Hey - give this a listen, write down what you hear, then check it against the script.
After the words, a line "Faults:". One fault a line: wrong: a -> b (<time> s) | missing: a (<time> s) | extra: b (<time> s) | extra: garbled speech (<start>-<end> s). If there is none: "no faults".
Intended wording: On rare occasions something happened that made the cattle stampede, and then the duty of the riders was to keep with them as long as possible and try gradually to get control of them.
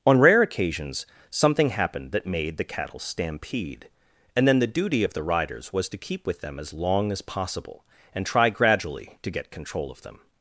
On rare occasions something happened that made the cattle stampede, and then the duty of the riders was to keep with them as long as possible and try gradually to get control of them.
Faults:
no faults